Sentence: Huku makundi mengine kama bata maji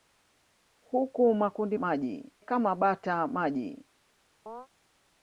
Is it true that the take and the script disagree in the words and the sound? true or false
true